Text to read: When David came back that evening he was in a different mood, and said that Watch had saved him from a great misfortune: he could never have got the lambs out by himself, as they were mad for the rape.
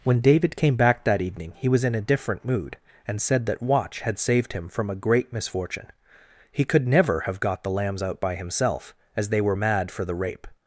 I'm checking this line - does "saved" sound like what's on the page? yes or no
yes